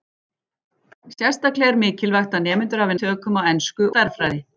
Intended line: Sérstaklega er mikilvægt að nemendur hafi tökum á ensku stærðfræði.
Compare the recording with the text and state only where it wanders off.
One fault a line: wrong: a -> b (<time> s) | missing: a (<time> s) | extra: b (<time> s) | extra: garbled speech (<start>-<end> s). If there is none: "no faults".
no faults